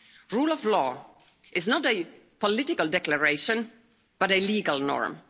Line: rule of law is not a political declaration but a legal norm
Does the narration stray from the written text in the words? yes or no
no